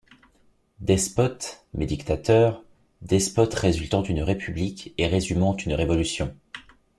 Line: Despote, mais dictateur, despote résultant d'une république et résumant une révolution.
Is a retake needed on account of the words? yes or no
no